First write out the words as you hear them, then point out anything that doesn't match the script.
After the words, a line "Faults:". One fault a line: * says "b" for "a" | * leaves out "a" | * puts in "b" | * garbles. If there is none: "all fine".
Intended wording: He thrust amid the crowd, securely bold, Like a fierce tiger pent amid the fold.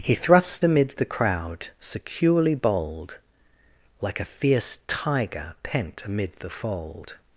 He thrust amid the crowd, securely bold, Like a fierce tiger pent amid the fold.
Faults:
all fine